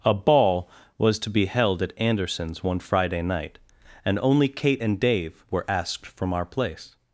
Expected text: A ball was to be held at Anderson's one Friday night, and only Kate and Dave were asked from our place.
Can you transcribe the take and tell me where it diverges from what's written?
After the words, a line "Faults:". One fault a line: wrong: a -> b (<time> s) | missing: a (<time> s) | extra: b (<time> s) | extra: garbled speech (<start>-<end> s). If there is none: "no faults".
A ball was to be held at Anderson's one Friday night, and only Kate and Dave were asked from our place.
Faults:
no faults